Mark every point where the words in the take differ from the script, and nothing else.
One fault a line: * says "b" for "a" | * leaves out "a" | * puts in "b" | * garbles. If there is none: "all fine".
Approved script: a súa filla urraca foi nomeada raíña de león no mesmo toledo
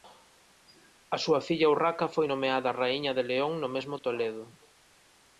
all fine